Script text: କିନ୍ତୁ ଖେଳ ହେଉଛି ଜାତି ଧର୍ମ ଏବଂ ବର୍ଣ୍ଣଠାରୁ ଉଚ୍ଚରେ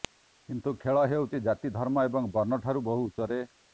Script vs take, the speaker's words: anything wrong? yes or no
yes